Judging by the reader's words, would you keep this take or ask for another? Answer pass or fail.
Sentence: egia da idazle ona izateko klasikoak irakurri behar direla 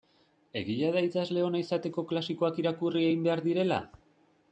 fail